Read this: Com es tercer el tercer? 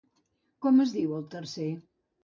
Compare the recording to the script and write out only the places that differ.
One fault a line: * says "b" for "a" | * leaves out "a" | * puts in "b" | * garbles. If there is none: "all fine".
* says "diu" for "tercer"